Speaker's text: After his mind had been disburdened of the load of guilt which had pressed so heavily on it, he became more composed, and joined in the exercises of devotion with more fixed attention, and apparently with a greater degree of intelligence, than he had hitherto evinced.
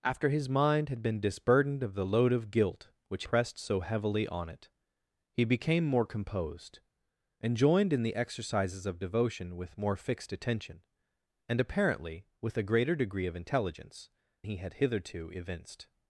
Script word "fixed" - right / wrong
right